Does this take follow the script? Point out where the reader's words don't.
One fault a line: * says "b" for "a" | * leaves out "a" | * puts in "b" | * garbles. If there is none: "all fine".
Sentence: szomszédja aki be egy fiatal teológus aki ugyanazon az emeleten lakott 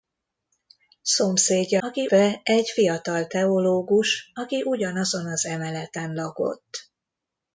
all fine